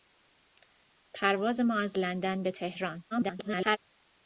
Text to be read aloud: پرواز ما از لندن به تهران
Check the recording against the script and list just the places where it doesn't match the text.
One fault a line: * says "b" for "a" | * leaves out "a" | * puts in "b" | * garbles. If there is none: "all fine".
* garbles